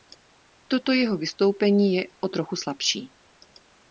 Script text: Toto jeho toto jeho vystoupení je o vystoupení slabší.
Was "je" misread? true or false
false